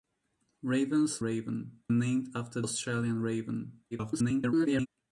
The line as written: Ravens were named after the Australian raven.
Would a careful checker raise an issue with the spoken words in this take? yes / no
yes